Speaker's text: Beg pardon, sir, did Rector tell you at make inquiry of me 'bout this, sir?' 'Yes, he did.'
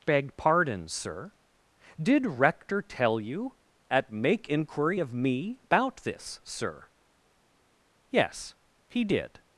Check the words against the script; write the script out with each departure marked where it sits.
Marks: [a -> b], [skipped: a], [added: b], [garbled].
Beg pardon, sir, did Rector tell you at make inquiry of me 'bout this, sir?' 'Yes, he did.'